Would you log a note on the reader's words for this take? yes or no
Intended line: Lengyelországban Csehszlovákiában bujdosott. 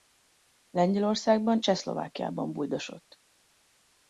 no